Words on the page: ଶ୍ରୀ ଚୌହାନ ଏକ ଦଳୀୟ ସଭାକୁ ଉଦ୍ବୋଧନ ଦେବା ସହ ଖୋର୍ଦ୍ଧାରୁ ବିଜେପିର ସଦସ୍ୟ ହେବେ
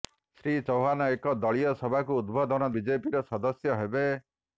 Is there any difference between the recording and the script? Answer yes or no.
yes